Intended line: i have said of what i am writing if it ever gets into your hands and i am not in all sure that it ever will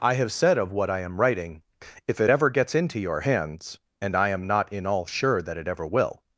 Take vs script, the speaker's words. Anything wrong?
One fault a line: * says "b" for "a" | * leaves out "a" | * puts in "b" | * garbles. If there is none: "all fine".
all fine